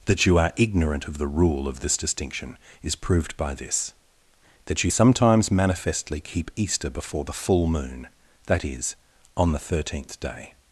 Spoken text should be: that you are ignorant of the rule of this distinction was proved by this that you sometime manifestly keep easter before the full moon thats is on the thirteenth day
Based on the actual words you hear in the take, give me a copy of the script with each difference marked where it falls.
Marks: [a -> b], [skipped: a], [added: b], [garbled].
that you are ignorant of the rule of this distinction [was -> is] proved by this that you [sometime -> sometimes] manifestly keep easter before the full moon [thats -> that] is on the thirteenth day